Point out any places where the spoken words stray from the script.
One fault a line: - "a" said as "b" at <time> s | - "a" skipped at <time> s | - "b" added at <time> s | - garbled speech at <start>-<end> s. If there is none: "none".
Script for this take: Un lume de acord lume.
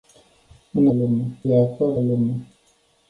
none